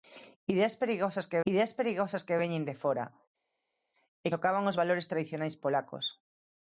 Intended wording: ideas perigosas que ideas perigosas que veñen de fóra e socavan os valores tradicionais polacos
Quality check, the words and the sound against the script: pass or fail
pass